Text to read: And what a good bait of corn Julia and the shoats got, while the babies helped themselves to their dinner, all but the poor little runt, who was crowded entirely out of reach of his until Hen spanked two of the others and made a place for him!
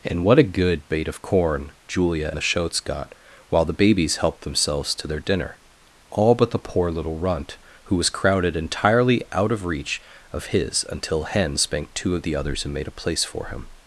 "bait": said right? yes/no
yes